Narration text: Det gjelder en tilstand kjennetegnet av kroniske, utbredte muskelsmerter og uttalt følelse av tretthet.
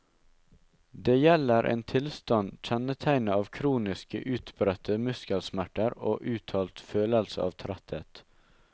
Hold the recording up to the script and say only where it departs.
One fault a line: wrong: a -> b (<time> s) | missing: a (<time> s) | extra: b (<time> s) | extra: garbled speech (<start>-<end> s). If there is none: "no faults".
no faults